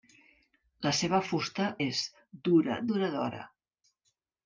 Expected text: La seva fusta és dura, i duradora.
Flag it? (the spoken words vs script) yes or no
no